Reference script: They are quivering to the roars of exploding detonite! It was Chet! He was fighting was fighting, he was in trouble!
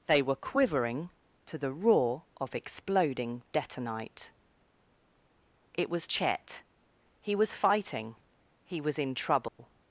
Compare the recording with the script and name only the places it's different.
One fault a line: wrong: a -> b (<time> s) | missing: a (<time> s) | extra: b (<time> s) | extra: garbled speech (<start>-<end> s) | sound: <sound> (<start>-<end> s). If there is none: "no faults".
wrong: are -> were (0.2 s)
wrong: roars -> roar (1.7 s)
missing: was fighting (8.2 s)
sound: dropout (9.5-9.6 s)